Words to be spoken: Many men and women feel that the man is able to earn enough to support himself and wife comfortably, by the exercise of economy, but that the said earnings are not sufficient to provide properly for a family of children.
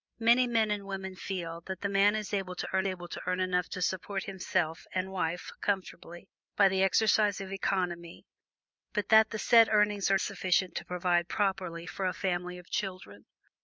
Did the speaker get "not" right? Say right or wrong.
wrong